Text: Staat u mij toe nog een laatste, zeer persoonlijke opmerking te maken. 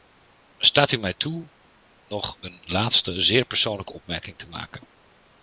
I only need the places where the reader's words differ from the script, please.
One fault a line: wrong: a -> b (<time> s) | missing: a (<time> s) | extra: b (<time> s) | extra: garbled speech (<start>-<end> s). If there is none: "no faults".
no faults